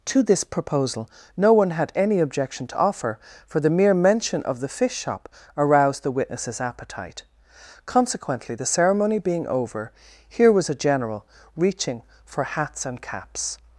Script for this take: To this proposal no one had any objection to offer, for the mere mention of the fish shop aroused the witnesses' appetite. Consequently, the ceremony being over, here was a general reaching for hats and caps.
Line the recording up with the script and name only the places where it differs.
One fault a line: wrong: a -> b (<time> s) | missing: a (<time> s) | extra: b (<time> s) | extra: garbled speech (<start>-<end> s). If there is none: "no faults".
no faults